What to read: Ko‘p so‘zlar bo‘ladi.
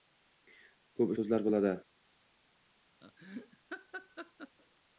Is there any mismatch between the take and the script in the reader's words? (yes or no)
no